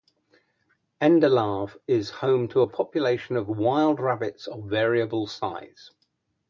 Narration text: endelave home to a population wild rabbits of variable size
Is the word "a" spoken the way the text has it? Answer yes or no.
yes